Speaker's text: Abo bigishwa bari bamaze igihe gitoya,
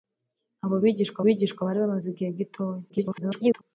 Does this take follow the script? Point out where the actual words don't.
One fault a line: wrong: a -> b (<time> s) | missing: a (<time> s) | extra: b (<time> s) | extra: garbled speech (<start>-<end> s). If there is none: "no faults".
extra: bigishwa (1.2 s)
extra: garbled speech (2.9-3.6 s)